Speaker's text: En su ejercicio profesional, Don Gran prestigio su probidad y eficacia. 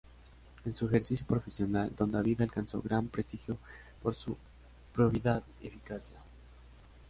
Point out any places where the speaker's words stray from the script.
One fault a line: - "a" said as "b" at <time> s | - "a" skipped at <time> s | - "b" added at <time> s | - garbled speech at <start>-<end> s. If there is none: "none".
- "David alcanzó" added at 2.1 s
- "por" added at 4.0 s